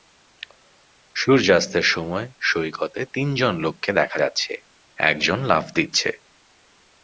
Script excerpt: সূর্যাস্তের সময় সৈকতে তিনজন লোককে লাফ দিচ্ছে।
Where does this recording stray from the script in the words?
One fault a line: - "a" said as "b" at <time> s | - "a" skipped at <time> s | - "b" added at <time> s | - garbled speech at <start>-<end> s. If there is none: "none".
- "দেখা যাচ্ছে একজন" added at 3.9 s